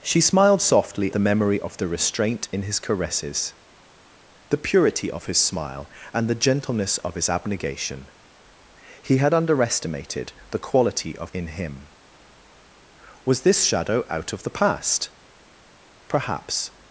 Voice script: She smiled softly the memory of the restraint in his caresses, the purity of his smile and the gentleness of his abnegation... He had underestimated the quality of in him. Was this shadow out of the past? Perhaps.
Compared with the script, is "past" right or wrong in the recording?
right